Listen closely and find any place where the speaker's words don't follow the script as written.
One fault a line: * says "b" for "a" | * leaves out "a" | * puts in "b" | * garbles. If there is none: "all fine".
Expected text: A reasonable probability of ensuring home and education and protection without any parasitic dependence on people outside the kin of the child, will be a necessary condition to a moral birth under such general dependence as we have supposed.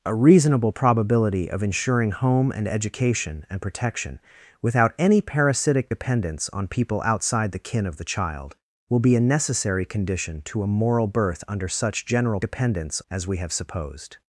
all fine